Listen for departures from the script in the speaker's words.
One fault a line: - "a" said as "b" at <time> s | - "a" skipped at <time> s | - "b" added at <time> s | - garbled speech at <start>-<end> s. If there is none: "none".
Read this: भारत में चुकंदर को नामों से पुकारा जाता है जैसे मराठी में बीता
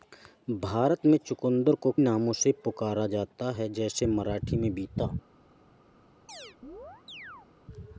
none